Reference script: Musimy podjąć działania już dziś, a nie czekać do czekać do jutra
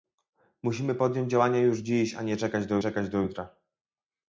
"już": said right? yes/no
yes